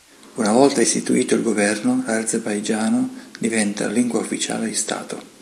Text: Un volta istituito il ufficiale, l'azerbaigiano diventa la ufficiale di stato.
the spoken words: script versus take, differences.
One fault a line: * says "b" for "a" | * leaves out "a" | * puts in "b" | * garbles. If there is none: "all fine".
* says "Una" for "Un"
* says "governo" for "ufficiale"
* puts in "lingua"